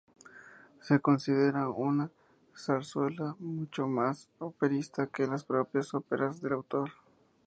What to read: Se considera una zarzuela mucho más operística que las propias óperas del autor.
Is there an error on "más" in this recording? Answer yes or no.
no